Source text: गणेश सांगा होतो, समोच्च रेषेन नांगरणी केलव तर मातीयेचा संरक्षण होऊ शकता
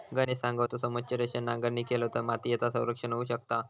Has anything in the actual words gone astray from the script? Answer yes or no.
no